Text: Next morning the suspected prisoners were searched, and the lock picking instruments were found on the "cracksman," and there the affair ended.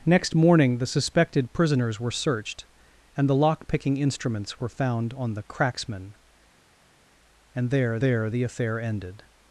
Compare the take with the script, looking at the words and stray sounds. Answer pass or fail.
fail